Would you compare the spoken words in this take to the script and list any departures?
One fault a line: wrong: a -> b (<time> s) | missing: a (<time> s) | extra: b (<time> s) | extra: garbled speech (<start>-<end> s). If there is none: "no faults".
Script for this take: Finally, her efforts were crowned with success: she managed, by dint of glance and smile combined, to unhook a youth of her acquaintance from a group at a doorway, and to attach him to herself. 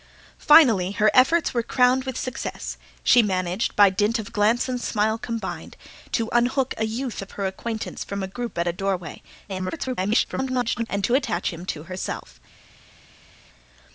extra: garbled speech (9.5-10.9 s)